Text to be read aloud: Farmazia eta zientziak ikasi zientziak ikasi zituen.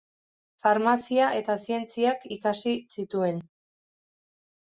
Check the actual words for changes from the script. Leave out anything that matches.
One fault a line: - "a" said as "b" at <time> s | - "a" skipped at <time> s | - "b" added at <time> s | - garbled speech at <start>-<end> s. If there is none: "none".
- "zientziak ikasi" skipped at 2.7 s